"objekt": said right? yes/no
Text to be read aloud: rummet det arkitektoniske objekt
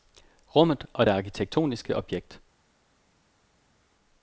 yes